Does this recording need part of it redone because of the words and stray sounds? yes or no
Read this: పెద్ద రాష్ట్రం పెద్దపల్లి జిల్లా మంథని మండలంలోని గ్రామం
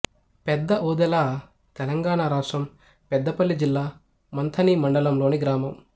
yes